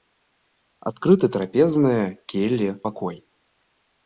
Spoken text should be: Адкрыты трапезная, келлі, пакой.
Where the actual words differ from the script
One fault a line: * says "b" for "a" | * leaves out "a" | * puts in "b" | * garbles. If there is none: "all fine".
all fine